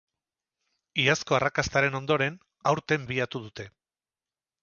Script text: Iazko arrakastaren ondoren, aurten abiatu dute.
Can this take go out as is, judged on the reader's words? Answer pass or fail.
pass